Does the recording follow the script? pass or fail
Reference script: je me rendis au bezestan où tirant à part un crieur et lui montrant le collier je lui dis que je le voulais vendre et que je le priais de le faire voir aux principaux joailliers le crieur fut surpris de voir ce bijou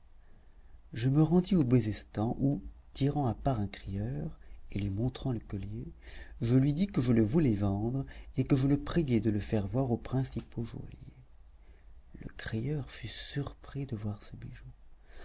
pass